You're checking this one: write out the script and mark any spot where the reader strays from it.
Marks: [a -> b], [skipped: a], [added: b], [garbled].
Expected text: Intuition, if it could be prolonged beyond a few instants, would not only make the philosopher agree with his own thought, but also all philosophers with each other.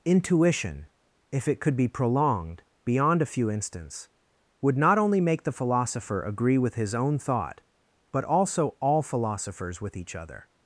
Intuition, if it could be prolonged beyond a few instants, would not only make the philosopher agree with his own thought, but also all philosophers with each other.